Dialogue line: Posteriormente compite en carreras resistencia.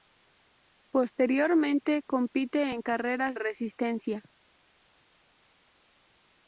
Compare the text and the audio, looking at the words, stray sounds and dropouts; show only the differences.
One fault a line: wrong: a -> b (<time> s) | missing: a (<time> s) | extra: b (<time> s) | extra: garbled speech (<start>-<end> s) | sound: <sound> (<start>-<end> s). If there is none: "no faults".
no faults